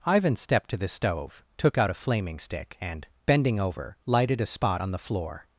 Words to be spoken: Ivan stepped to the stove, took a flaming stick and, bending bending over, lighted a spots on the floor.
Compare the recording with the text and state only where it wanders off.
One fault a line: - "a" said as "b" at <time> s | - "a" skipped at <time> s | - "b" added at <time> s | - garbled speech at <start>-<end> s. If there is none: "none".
- "out" added at 1.8 s
- "bending" skipped at 3.6 s
- "spots" said as "spot" at 4.5 s